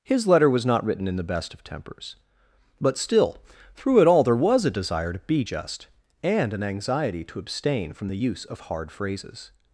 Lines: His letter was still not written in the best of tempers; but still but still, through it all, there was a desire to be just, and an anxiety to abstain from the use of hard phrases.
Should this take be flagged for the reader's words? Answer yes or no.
yes